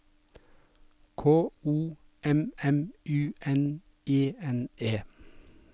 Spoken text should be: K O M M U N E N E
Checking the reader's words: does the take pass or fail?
pass